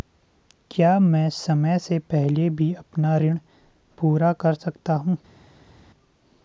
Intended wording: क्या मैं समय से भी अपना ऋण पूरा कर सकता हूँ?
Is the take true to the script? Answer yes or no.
no